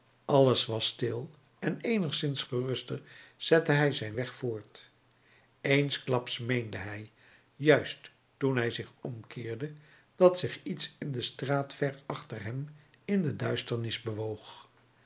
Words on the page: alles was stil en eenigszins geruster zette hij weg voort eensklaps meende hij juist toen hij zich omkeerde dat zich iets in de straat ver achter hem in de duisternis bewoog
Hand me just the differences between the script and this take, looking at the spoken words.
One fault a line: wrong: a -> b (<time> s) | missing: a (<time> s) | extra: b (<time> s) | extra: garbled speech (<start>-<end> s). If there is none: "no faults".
extra: zijn (3.9 s)